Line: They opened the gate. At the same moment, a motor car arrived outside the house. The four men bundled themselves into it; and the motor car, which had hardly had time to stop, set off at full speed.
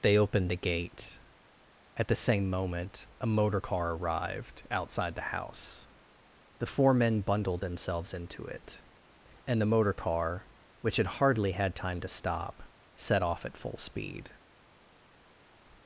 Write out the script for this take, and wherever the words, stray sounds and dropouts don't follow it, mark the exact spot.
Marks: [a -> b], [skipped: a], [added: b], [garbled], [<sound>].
They opened the gate. At the same moment, a motor car arrived outside the house. The four men bundled themselves into it; and the motor car, which had hardly had time to stop, set off at full speed.